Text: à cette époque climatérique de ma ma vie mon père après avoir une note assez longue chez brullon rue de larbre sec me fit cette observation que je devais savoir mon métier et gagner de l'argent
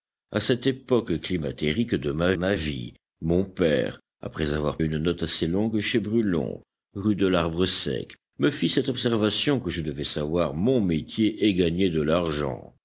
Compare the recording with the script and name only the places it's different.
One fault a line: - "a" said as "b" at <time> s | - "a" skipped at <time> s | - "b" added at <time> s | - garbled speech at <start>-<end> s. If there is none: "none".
none